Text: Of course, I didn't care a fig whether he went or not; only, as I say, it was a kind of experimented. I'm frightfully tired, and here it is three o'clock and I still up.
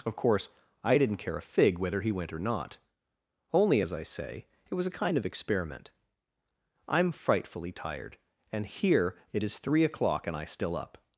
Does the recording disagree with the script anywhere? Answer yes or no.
yes